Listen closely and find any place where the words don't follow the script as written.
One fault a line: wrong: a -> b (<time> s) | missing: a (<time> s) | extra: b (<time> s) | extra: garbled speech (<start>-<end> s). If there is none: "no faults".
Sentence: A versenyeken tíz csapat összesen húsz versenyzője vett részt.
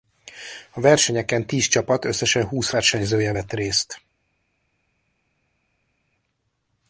no faults